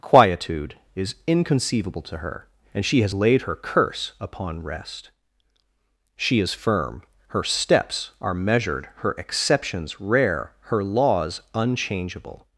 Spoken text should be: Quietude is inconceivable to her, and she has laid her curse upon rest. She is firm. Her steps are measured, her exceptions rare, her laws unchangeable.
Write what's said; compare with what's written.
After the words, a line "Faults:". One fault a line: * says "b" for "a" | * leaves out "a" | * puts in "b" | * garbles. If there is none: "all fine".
Quietude is inconceivable to her, and she has laid her curse upon rest. She is firm. Her steps are measured, her exceptions rare, her laws unchangeable.
Faults:
all fine